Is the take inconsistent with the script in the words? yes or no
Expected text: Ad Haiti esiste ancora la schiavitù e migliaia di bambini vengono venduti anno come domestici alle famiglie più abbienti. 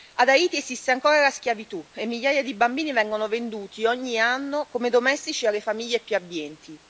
yes